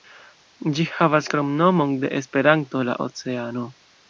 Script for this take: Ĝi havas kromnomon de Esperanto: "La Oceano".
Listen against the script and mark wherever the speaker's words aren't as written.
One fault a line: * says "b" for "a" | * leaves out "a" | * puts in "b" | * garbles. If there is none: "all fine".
all fine